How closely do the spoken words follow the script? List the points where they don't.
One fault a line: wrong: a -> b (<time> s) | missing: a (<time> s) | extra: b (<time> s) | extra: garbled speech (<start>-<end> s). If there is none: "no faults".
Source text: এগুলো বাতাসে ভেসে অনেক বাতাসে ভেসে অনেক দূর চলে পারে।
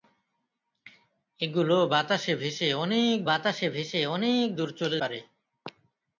no faults